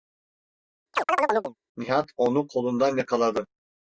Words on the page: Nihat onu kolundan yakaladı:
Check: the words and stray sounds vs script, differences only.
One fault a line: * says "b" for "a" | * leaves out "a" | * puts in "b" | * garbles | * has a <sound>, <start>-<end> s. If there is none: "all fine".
* has a chirp, 0.9-1.6 s